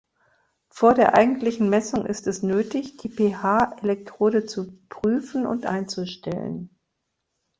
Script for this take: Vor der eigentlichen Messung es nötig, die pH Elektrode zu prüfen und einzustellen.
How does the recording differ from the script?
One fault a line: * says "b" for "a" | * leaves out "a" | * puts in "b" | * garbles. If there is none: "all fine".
* puts in "ist"